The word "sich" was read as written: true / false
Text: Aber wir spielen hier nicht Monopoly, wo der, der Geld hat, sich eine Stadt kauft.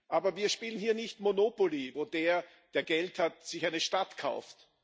true